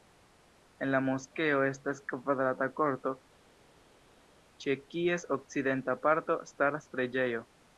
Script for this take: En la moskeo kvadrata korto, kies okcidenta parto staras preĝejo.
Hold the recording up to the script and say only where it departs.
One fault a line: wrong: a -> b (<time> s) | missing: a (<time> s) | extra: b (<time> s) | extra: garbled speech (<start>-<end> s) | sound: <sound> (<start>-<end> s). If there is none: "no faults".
extra: estas (1.6 s)
extra: ĉe (4.7 s)